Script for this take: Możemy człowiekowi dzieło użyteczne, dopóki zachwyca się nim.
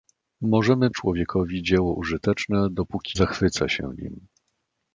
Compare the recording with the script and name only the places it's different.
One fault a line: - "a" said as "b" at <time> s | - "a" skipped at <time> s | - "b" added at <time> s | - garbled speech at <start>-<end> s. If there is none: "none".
none